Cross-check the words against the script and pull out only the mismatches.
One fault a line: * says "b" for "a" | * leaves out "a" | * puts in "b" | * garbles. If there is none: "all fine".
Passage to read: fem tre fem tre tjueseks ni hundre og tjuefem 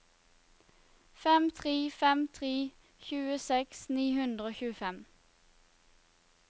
all fine